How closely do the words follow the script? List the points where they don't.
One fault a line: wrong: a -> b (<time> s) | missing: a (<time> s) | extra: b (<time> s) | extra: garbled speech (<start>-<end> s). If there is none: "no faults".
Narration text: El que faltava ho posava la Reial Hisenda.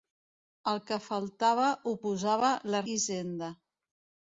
missing: Reial (2.8 s)